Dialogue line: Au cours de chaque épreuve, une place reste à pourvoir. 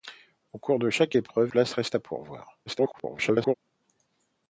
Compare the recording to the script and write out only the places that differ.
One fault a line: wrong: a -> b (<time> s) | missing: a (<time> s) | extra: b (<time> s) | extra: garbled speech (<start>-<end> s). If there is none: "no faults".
missing: une (1.5 s)
extra: garbled speech (2.7-3.5 s)